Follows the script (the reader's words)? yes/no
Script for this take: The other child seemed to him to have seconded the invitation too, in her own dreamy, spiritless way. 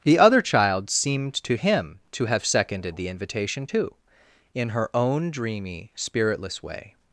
yes